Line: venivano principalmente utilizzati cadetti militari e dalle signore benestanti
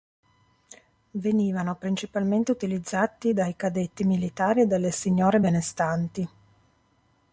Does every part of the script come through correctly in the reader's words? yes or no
no